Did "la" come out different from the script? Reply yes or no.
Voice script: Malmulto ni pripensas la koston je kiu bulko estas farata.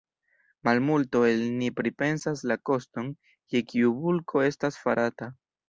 no